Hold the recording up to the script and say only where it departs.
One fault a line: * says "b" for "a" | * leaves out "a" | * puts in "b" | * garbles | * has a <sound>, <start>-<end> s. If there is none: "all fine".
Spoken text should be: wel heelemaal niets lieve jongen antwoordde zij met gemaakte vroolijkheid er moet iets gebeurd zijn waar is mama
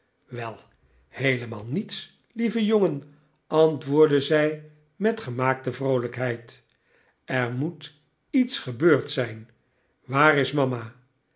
all fine